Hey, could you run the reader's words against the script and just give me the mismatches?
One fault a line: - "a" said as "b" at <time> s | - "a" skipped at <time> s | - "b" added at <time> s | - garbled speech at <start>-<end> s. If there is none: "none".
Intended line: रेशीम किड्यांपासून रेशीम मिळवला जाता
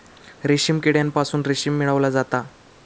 none